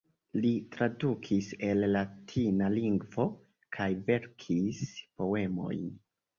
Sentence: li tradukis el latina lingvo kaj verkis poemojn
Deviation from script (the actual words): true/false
false